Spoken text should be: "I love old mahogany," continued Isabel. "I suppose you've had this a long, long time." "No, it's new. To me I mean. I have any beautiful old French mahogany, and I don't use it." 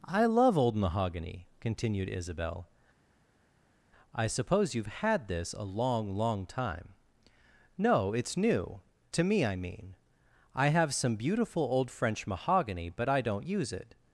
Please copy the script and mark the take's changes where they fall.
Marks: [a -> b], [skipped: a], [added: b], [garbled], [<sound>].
"I love old mahogany," continued Isabel. "I suppose you've had this a long, long time." "No, it's new. To me I mean. I have [any -> some] beautiful old French mahogany, [and -> but] I don't use it."